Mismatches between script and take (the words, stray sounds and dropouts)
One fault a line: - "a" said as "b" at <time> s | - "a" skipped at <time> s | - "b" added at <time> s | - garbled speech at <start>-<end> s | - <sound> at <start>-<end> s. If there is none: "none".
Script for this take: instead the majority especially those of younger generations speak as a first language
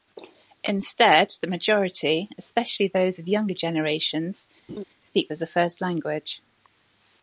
- laugh at 4.7-4.8 s